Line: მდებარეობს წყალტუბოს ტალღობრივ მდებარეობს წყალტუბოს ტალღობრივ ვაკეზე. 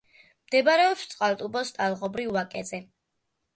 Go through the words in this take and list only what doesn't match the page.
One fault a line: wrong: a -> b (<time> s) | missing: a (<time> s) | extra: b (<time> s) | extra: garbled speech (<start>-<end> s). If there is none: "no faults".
missing: მდებარეობს წყალტუბოს ტალღობრივ (2.3 s)